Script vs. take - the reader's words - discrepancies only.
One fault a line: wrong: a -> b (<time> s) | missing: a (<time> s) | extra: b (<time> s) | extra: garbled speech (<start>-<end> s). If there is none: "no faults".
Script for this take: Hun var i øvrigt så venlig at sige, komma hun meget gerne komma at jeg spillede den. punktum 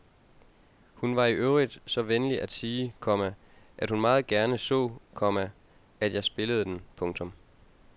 extra: at (3.8 s)
extra: så (4.6 s)